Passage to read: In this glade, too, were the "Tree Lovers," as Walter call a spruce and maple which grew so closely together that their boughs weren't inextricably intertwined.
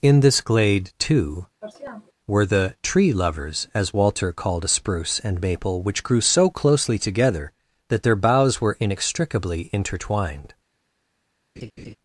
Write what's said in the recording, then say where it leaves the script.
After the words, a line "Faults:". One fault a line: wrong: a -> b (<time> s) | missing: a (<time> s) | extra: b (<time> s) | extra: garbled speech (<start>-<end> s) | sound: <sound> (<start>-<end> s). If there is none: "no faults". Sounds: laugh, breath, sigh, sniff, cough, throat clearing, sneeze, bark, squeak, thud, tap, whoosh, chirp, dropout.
In this glade, too, were the "Tree Lovers," as Walter called a spruce and maple which grew so closely together that their boughs were inextricably intertwined.
Faults:
sound: sniff (1.6-2.1 s)
wrong: call -> called (4.3 s)
wrong: weren't -> were (8.6 s)
sound: laugh (11.6-12.0 s)